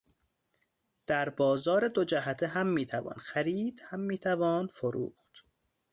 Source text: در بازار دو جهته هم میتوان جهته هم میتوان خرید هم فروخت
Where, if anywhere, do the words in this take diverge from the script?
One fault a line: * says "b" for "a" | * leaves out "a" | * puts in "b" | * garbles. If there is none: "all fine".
* says "خرید" for "جهته"
* leaves out "خرید هم"